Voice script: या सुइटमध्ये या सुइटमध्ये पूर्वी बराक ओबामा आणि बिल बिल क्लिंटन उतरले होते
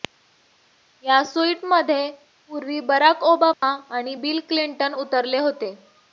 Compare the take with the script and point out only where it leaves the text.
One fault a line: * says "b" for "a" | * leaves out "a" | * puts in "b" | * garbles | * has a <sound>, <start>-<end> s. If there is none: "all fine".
* leaves out "या सुइटमध्ये"
* has a dropout, 3.5-3.6 s
* leaves out "बिल"